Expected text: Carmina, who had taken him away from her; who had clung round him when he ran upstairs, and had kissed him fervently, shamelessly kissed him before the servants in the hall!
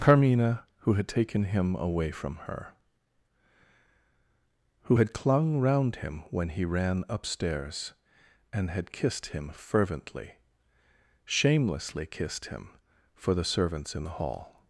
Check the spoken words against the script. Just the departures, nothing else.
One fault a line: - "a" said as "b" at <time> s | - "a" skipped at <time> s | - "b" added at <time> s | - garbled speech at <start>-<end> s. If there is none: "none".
- "before" said as "for" at 13.2 s